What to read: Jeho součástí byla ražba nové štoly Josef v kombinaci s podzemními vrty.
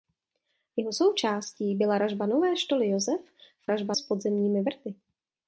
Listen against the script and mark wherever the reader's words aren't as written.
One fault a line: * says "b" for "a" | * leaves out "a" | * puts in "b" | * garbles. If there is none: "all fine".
* says "ražba" for "kombinaci"